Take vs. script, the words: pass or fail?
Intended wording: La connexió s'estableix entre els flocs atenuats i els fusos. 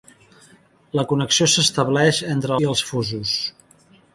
fail